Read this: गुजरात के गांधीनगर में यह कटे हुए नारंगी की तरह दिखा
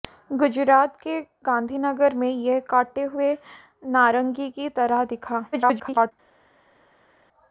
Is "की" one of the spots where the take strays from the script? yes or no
no